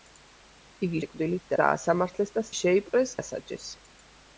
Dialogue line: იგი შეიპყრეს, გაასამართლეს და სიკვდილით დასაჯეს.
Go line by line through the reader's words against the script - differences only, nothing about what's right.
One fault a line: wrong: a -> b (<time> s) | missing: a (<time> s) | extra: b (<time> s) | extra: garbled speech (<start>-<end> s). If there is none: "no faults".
wrong: შეიპყრეს -> სიკვდილით (1.0 s)
wrong: სიკვდილით -> შეიპყრეს (2.6 s)